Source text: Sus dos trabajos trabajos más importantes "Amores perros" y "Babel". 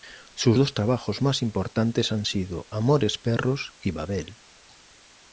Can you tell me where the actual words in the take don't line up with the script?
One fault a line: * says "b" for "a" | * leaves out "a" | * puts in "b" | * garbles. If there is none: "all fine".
* leaves out "trabajos"
* puts in "han sido"